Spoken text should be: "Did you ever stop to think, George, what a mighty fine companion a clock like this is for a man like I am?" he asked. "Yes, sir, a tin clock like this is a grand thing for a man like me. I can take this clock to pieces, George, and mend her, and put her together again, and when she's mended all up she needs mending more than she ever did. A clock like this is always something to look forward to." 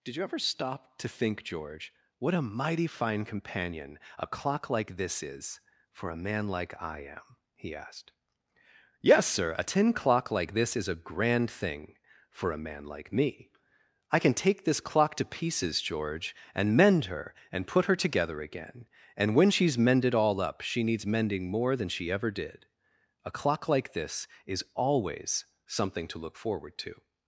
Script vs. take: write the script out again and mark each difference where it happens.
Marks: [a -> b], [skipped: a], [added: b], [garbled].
"Did you ever stop to think, George, what a mighty fine companion a clock like this is for a man like I am?" he asked. "Yes, sir, a tin clock like this is a grand thing for a man like me. I can take this clock to pieces, George, and mend her, and put her together again, and when she's mended all up she needs mending more than she ever did. A clock like this is always something to look forward to."